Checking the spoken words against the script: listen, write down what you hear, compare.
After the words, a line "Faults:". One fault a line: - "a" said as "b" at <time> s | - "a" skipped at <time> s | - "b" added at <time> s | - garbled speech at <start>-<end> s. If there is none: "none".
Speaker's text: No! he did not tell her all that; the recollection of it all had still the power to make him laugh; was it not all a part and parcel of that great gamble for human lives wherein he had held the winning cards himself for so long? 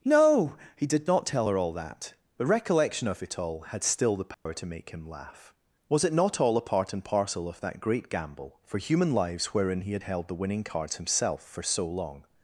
No! he did not tell her all that; the recollection of it all had still the power to make him laugh; was it not all a part and parcel of that great gamble for human lives wherein he had held the winning cards himself for so long?
Faults:
none